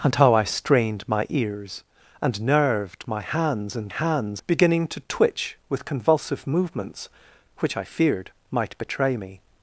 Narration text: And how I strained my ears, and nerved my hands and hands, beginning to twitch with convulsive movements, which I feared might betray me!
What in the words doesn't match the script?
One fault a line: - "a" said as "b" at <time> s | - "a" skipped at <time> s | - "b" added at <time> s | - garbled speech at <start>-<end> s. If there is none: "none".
none